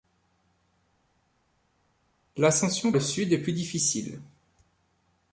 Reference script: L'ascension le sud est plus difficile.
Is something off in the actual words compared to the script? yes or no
no